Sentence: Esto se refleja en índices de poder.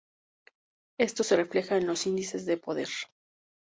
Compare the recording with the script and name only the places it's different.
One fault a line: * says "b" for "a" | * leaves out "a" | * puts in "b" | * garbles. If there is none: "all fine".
* puts in "los"